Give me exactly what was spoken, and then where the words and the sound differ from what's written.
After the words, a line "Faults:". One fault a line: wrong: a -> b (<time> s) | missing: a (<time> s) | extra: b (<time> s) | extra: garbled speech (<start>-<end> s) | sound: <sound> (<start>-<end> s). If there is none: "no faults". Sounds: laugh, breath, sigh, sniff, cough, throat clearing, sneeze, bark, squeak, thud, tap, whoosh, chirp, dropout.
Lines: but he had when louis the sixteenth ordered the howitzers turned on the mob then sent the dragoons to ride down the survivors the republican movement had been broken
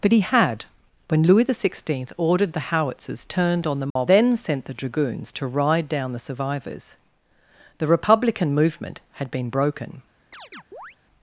but he had when louis the sixteenth ordered the howitzers turned on the mob then sent the dragoons to ride down the survivors the republican movement had been broken
Faults:
sound: dropout (3.9-4.0 s)
sound: chirp (10.3-11.0 s)